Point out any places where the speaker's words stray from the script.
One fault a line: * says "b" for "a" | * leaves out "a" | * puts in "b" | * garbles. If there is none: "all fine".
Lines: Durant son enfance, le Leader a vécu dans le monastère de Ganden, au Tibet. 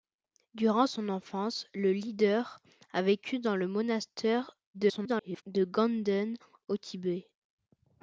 * garbles